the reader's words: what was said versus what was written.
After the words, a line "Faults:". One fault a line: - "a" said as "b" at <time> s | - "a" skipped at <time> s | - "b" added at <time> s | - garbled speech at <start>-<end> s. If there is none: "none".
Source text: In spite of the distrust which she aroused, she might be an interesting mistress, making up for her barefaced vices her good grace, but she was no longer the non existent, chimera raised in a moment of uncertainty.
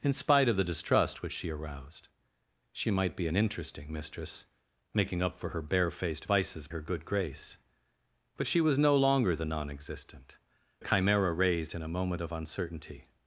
In spite of the distrust which she aroused, she might be an interesting mistress, making up for her barefaced vices her good grace, but she was no longer the non existent, chimera raised in a moment of uncertainty.
Faults:
none